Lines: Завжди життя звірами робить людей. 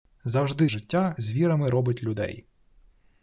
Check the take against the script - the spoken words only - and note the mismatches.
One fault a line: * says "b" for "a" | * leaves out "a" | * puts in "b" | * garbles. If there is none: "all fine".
all fine